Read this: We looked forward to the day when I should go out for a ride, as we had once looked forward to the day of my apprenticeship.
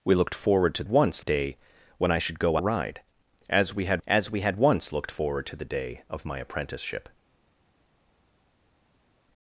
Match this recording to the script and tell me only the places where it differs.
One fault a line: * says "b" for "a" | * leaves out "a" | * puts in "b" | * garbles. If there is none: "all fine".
* says "once" for "the"
* says "a ride as we had" for "out for a ride"